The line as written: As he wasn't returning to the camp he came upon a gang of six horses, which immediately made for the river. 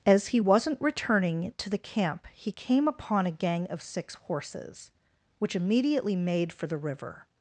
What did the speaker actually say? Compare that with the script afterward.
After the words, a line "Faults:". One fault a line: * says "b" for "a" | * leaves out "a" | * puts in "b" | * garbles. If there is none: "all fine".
As he wasn't returning to the camp he came upon a gang of six horses, which immediately made for the river.
Faults:
all fine